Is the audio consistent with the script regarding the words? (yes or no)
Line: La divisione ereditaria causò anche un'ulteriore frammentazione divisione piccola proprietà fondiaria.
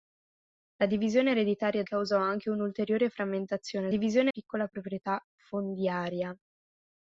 yes